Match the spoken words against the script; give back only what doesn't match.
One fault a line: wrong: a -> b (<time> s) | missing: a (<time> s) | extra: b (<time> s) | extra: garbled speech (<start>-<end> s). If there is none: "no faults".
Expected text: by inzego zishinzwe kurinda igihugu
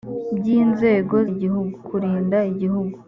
wrong: zishinzwe -> igihugu (1.3 s)